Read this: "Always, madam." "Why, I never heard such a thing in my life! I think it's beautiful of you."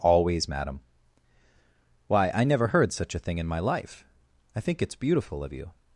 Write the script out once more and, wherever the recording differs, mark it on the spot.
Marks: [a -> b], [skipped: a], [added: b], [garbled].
"Always, madam." "Why, I never heard such a thing in my life! I think it's beautiful of you."